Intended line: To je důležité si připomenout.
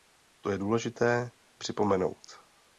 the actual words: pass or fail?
fail